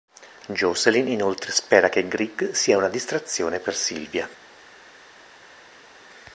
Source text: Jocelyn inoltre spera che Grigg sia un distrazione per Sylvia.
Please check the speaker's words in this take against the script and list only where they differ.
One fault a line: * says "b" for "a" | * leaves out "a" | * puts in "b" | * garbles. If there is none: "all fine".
* says "una" for "un"